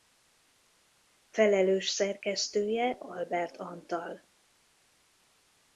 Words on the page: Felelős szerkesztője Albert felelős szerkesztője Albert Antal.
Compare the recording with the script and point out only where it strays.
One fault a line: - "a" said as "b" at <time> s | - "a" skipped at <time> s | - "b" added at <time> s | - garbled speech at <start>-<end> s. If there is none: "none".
- "felelős szerkesztője Albert" skipped at 3.6 s